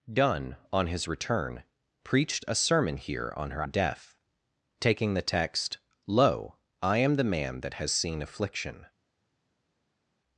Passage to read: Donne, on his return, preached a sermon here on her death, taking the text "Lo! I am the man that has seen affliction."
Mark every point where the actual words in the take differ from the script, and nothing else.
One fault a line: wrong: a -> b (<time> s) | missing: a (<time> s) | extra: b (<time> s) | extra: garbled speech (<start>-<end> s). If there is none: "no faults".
no faults